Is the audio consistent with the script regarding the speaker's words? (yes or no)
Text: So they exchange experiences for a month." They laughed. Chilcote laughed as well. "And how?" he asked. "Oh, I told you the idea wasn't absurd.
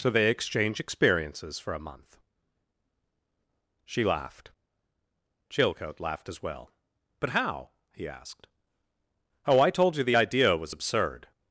no